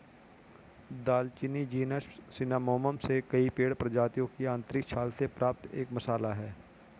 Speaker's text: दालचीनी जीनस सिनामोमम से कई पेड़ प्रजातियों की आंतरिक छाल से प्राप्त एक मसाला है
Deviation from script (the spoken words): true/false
false